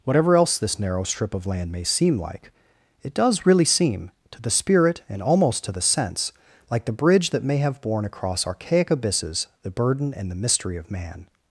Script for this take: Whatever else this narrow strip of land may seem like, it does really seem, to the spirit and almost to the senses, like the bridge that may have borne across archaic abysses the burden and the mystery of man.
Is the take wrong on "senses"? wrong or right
wrong